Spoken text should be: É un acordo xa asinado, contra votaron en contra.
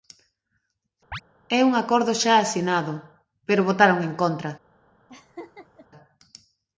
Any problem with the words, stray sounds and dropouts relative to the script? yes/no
yes